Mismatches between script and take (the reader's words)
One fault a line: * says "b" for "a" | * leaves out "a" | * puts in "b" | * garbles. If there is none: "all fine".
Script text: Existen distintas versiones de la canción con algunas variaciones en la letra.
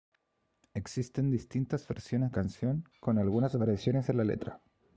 * leaves out "de la"